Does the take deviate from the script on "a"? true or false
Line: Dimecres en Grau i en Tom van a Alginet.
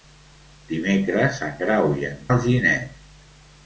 true